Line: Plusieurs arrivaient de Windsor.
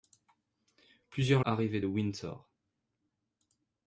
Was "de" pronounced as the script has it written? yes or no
yes